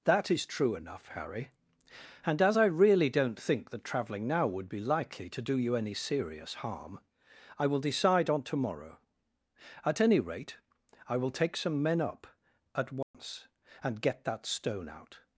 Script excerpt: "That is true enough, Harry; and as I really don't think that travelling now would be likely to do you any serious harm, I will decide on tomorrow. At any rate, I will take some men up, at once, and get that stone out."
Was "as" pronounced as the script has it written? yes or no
yes